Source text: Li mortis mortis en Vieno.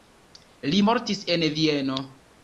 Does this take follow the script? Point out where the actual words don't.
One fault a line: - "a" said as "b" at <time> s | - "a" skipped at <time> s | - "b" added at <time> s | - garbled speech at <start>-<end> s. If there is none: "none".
- "mortis" skipped at 1.2 s